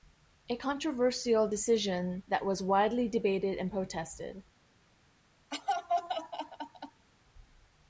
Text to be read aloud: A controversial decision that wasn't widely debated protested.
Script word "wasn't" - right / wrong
wrong